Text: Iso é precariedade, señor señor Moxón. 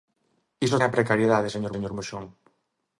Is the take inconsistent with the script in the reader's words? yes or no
no